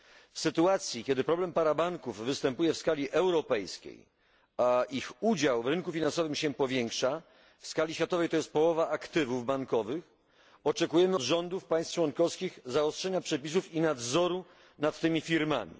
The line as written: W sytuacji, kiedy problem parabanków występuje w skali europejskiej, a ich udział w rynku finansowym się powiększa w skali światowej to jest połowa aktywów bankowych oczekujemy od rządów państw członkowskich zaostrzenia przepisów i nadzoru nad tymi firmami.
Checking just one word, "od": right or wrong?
wrong